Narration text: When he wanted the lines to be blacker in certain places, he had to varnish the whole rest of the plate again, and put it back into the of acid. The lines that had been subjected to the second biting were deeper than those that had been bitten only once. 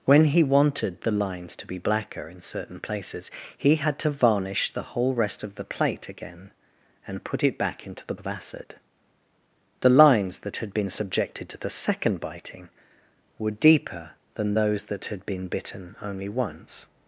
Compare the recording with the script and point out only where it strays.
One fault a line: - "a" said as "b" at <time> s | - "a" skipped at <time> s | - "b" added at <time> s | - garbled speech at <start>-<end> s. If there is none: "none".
none